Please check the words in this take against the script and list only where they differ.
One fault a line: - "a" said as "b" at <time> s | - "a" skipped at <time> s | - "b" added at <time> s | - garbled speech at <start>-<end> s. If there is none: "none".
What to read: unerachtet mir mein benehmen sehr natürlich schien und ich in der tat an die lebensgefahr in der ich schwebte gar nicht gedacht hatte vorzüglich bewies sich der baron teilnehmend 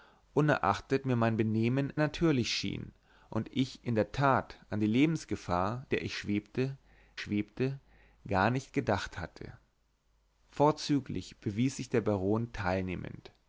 - "sehr" skipped at 1.9 s
- "in" skipped at 5.9 s
- "schwebte" added at 7.2 s